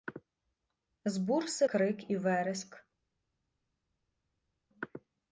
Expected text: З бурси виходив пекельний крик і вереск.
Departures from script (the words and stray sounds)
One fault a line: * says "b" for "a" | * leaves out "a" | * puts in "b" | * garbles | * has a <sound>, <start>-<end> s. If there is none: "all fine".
* leaves out "виходив пекельний"